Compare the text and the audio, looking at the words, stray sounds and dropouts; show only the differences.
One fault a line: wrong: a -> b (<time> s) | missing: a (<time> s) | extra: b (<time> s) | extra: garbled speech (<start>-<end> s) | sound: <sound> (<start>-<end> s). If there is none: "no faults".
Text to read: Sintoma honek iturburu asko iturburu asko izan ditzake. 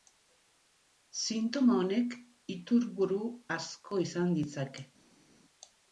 missing: iturburu asko (4.0 s)